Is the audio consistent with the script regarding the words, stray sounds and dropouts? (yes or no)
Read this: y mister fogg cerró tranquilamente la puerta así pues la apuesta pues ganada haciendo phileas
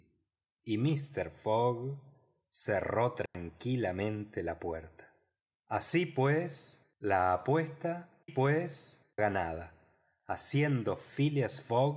no